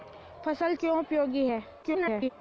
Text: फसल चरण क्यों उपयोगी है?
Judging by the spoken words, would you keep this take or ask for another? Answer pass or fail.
fail